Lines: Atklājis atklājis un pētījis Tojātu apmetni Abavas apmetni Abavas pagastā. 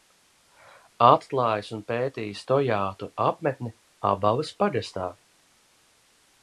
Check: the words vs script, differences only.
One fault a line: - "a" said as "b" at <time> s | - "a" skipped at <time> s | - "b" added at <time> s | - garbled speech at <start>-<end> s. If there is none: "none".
- "atklājis" skipped at 1.7 s
- "apmetni Abavas" skipped at 4.5 s